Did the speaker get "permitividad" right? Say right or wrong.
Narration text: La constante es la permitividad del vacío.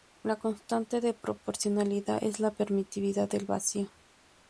right